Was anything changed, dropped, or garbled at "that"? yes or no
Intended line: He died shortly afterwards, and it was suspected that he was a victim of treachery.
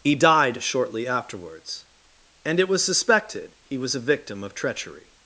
yes